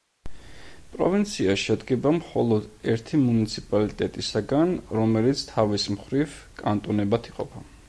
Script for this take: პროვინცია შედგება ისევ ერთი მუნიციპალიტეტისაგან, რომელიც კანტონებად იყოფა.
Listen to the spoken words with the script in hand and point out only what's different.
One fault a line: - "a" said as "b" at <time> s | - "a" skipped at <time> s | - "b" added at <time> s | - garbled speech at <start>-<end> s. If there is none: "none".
- "ისევ" said as "მხოლოდ" at 2.1 s
- "თავის მხრივ" added at 5.5 s